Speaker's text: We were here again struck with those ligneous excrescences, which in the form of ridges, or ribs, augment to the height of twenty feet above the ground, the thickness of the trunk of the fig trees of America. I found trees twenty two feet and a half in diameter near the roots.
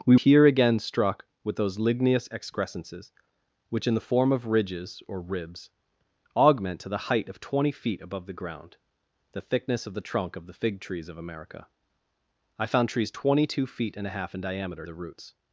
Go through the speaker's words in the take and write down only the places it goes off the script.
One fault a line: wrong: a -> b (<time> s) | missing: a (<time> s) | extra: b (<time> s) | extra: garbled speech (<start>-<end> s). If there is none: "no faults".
missing: were (0.2 s)
missing: near (14.9 s)